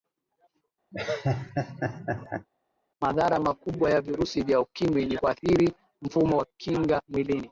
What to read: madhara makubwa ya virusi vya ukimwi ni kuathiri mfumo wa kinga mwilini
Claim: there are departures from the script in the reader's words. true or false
false